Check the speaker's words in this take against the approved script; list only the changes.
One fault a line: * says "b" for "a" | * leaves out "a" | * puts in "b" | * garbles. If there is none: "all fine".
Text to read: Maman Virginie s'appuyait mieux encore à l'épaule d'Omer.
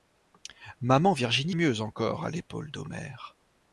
* leaves out "s'appuyait"